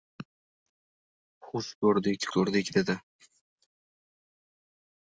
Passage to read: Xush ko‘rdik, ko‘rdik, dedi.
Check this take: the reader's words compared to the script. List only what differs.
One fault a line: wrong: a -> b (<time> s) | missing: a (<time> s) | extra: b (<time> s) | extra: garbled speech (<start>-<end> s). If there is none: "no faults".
no faults